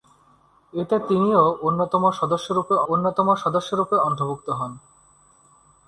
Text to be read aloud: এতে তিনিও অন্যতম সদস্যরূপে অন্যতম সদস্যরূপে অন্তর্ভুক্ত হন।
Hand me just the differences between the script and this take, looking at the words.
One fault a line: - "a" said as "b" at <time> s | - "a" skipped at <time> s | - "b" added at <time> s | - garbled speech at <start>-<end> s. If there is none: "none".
none